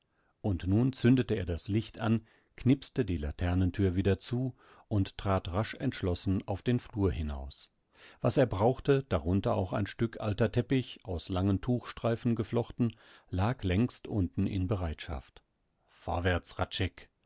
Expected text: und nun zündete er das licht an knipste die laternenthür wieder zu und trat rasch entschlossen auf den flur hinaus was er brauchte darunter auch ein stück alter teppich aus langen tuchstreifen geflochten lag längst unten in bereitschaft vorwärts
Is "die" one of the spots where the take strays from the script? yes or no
no